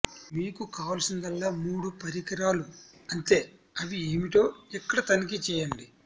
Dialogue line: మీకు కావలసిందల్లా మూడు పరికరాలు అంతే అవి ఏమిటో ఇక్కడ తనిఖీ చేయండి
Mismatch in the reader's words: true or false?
false